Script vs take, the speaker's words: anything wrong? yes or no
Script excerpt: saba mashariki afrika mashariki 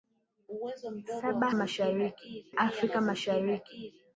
no